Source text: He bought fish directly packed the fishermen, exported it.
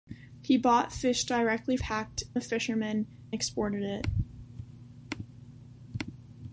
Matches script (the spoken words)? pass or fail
pass